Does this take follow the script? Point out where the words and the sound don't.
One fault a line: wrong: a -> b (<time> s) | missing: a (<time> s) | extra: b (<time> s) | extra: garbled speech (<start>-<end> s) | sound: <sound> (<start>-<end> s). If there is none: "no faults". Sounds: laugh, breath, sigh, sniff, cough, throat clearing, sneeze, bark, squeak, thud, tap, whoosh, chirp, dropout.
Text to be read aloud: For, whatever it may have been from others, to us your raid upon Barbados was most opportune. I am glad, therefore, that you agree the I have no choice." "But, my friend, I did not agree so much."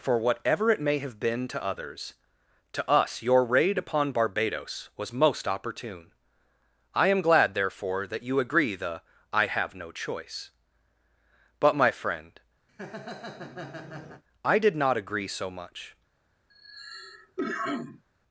wrong: from -> to (1.5 s)
sound: laugh (12.7-14.2 s)
sound: cough (16.5-18.0 s)